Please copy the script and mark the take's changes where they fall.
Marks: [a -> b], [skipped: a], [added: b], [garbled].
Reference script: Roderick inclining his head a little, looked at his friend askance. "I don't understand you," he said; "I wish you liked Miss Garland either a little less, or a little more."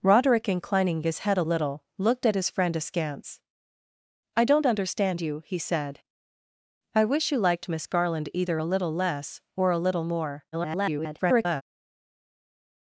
Roderick inclining his head a little, looked at his friend askance. "I don't understand you," he said; "I wish you liked Miss Garland either a little less, or a little more." [garbled]